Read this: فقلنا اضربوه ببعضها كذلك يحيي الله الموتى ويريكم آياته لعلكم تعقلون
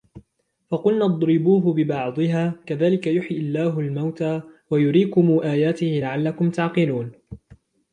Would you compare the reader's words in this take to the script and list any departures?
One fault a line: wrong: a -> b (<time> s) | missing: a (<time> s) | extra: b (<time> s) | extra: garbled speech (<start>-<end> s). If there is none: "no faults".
no faults